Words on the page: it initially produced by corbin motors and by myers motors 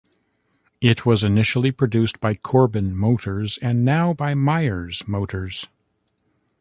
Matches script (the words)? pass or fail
fail